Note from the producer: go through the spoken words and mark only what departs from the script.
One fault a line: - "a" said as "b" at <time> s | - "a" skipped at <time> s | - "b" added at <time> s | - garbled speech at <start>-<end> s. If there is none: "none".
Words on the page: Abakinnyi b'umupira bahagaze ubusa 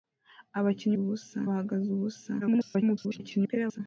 - "b'umupira" said as "ubusa" at 1.0 s
- garbled speech at 2.4-3.8 s